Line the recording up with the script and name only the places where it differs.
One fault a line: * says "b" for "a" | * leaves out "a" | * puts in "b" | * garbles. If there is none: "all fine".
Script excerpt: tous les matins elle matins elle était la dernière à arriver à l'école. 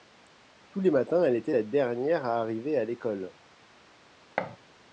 * leaves out "matins elle"